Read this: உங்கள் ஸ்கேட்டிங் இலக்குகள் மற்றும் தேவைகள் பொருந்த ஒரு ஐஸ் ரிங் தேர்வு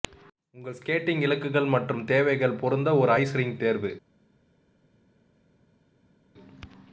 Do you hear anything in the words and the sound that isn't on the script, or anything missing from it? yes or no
no